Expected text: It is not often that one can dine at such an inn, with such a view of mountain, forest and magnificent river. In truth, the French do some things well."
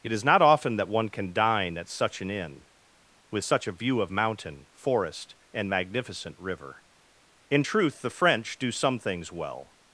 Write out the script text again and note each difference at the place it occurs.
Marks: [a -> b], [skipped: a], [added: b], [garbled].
It is not often that one can dine at such an inn, with such a view of mountain, forest and magnificent river. In truth, the French do some things well."